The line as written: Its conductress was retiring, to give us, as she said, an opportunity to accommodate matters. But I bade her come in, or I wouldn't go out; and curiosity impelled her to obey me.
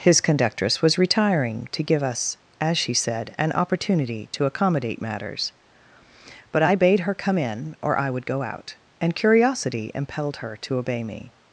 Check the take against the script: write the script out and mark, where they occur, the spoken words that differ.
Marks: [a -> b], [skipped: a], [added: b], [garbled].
[Its -> His] conductress was retiring, to give us, as she said, an opportunity to accommodate matters. But I bade her come in, or I [wouldn't -> would] go out; and curiosity impelled her to obey me.